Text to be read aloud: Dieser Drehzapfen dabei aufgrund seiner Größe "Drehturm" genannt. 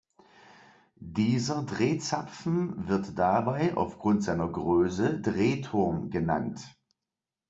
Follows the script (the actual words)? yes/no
no